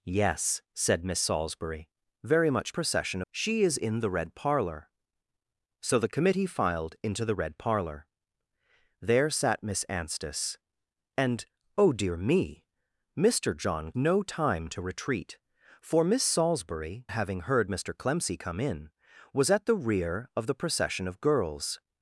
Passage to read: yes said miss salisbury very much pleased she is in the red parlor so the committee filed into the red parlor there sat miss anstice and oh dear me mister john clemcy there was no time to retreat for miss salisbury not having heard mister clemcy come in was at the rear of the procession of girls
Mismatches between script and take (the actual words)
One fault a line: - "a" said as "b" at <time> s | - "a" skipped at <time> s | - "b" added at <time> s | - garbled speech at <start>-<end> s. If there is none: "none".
- "pleased" said as "procession" at 2.7 s
- "clemcy there was" skipped at 13.9 s
- "not" skipped at 17.1 s